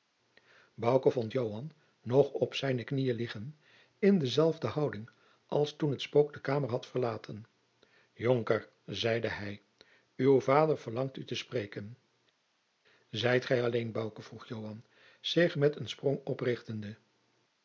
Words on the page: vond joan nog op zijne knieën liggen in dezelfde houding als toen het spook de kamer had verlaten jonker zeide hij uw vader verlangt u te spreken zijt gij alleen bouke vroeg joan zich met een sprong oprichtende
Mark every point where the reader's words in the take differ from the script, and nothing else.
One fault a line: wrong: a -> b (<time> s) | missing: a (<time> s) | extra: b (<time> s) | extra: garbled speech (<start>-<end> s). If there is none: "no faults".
no faults